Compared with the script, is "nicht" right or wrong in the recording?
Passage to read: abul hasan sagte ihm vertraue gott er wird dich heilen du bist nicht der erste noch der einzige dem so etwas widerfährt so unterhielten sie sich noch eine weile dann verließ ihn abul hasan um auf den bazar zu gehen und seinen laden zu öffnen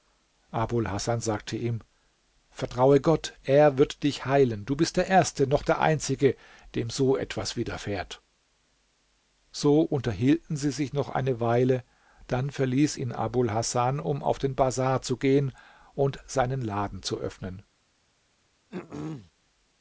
wrong